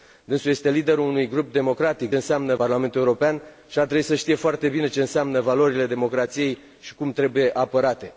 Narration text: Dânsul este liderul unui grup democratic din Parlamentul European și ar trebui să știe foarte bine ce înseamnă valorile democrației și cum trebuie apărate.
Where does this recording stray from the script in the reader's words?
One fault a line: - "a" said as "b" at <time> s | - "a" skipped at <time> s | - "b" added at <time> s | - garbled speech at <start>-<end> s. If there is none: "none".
- "din" said as "înseamnă" at 2.1 s